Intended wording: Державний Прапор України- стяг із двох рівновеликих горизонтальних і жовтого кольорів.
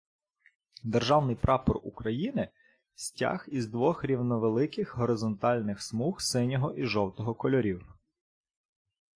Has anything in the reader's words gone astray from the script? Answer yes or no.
yes